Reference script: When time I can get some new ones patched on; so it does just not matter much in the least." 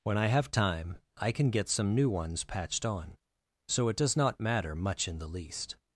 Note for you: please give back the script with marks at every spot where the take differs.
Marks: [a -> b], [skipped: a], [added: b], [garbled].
When [added: I have] time I can get some new ones patched on; so it does [skipped: just] not matter much in the least."